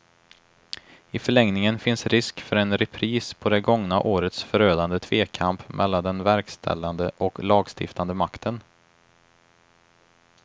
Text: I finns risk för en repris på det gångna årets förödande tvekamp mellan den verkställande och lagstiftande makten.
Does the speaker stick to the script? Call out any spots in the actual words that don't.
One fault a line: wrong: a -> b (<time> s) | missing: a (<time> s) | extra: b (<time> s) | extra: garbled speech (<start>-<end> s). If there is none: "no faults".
extra: förlängningen (1.2 s)